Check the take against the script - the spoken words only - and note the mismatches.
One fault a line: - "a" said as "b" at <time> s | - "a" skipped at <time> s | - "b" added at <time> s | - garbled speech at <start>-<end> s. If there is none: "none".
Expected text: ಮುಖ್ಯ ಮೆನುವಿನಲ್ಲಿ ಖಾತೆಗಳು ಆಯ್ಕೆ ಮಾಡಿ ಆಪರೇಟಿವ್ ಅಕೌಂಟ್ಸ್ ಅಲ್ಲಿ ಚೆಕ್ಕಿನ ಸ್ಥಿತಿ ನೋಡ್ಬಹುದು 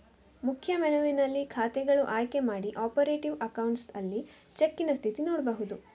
none